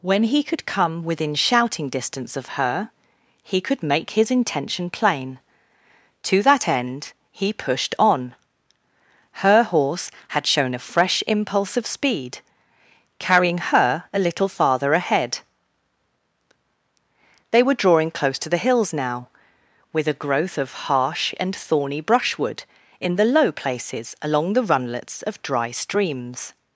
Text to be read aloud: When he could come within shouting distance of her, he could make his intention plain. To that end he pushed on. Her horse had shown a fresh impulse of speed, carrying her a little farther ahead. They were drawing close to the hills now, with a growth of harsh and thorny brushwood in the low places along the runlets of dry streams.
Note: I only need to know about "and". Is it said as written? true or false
true